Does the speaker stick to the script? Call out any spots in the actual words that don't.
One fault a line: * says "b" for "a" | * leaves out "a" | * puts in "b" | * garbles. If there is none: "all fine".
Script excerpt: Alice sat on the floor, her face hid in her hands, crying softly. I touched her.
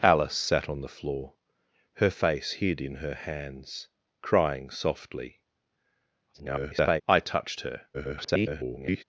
* garbles
* garbles